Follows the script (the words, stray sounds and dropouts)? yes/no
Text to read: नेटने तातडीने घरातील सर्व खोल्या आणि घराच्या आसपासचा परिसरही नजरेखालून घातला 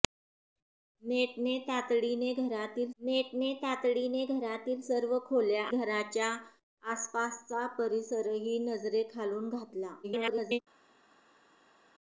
no